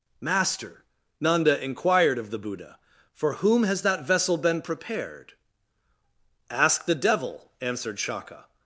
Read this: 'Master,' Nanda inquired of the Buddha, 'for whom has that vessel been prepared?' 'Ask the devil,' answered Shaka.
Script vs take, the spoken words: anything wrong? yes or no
no